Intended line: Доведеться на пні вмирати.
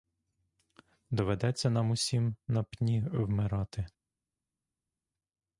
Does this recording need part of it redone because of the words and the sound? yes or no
yes